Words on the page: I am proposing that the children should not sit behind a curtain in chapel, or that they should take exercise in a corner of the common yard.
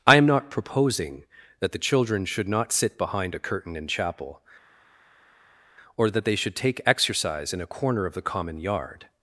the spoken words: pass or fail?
fail